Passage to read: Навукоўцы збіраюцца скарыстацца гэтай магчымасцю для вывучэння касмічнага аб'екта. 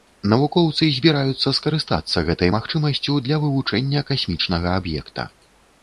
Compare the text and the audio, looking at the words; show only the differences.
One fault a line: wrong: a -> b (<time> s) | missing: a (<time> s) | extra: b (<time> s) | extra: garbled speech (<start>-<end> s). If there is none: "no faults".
no faults